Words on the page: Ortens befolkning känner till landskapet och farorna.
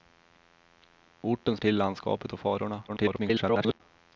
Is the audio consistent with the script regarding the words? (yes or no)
no